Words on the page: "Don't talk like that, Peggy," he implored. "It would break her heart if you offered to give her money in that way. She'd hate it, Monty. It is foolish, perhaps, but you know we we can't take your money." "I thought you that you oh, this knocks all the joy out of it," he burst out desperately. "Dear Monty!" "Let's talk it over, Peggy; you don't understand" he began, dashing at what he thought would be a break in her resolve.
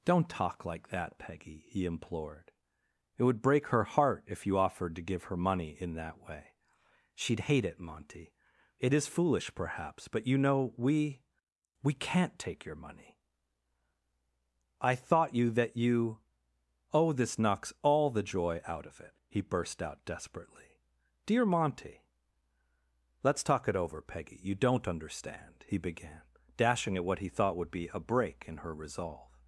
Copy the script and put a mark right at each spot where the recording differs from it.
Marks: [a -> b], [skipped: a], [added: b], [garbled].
"Don't talk like that, Peggy," he implored. "It would break her heart if you offered to give her money in that way. She'd hate it, Monty. It is foolish, perhaps, but you know we we can't take your money." "I thought you that you oh, this knocks all the joy out of it," he burst out desperately. "Dear Monty!" "Let's talk it over, Peggy; you don't understand" he began, dashing at what he thought would be a break in her resolve.